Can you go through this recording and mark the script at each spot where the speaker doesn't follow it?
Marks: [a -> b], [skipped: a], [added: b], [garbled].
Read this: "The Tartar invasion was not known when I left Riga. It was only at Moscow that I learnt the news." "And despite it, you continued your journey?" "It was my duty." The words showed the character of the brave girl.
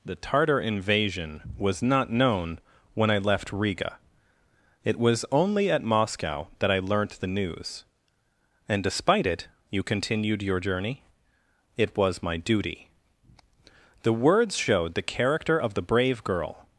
"The Tartar invasion was not known when I left Riga. It was only at Moscow that I learnt the news." "And despite it, you continued your journey?" "It was my duty." The words showed the character of the brave girl.